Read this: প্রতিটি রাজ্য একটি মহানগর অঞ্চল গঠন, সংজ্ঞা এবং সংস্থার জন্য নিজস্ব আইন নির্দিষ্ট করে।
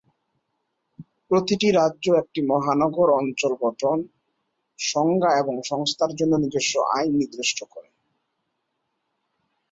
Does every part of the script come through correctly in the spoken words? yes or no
yes